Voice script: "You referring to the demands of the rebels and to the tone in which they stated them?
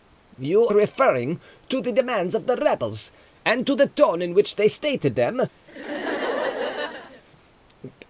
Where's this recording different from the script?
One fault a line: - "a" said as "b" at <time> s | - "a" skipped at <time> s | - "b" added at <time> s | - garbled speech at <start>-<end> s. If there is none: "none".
none